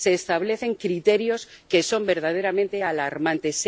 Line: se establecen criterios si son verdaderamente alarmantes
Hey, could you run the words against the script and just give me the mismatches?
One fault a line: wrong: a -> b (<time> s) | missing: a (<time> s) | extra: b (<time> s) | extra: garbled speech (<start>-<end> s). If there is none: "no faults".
wrong: si -> que (1.7 s)